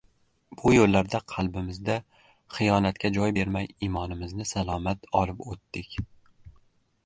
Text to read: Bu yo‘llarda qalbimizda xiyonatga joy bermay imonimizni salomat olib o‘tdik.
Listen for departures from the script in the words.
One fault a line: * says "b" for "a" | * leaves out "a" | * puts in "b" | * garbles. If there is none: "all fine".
all fine